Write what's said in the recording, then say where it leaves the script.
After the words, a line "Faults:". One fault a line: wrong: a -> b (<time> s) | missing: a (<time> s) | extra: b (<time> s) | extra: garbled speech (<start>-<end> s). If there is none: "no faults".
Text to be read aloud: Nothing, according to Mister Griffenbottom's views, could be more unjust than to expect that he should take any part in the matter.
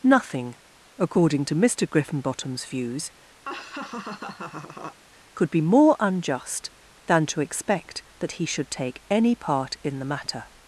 Nothing, according to Mister Griffenbottom's views, could be more unjust than to expect that he should take any part in the matter.
Faults:
no faults